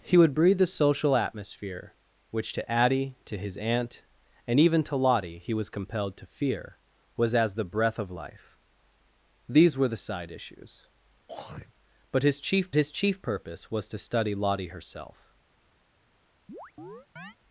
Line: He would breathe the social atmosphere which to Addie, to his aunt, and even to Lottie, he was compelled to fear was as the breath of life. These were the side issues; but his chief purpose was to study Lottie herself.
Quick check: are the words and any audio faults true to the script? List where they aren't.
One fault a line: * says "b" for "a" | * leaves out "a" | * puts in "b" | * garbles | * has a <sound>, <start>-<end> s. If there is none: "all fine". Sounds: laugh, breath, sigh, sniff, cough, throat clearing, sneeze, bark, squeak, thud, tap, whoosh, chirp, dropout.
* has a throat clearing, 11.3-11.7 s
* puts in "his chief"
* has a chirp, 16.5-17.4 s